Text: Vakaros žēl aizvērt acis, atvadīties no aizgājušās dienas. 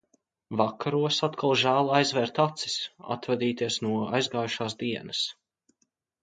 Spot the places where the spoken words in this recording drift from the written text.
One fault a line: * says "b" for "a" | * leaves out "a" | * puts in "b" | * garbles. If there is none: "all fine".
* puts in "atkal"